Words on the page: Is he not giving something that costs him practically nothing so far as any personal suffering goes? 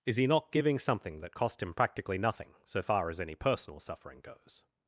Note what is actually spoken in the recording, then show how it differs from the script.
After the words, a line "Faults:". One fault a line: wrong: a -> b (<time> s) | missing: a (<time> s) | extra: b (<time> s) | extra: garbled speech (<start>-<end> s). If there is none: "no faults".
Is he not giving something that cost him practically nothing so far as any personal suffering goes?
Faults:
wrong: costs -> cost (1.3 s)